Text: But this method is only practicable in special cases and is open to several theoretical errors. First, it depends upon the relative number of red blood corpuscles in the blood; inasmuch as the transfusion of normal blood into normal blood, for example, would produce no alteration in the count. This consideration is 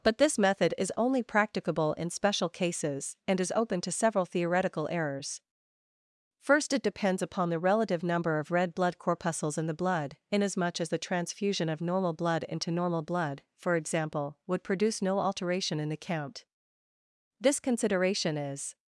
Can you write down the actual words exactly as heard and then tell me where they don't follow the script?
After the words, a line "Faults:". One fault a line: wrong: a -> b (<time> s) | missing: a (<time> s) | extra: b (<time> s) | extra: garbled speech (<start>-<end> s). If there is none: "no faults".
But this method is only practicable in special cases and is open to several theoretical errors. First, it depends upon the relative number of red blood corpuscles in the blood; inasmuch as the transfusion of normal blood into normal blood, for example, would produce no alteration in the count. This consideration is
Faults:
no faults